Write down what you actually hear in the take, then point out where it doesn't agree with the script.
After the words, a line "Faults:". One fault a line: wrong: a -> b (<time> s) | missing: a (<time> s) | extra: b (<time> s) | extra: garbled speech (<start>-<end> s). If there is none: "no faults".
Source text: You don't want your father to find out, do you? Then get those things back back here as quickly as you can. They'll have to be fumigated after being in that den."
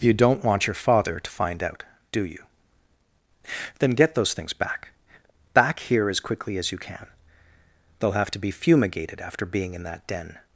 You don't want your father to find out, do you? Then get those things back back here as quickly as you can. They'll have to be fumigated after being in that den."
Faults:
no faults